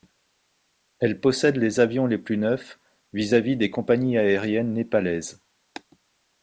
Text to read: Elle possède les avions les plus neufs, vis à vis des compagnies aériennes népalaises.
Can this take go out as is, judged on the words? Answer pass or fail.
pass